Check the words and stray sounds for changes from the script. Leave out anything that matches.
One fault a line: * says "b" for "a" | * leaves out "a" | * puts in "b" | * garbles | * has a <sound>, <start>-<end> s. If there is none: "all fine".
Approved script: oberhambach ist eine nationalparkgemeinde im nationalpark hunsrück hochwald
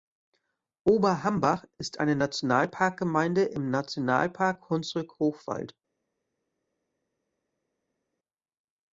all fine